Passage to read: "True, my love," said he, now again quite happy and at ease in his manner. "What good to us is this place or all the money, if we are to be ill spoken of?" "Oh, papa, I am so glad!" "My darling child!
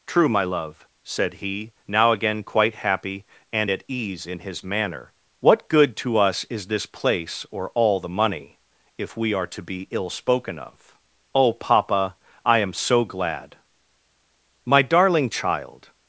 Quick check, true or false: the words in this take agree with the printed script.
true